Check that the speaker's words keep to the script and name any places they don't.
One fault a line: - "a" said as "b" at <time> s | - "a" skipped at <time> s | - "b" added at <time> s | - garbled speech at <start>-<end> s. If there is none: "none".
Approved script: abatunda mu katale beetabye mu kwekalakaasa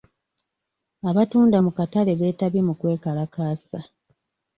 none